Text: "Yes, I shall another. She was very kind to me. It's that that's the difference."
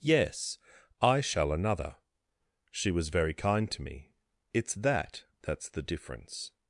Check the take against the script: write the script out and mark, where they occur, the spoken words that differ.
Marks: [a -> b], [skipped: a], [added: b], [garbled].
"Yes, I shall another. She was very kind to me. It's that that's the difference."